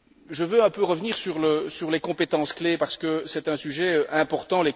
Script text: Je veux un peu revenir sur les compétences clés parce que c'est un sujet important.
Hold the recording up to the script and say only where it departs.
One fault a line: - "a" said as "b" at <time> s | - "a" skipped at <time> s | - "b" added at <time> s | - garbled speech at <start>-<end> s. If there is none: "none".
none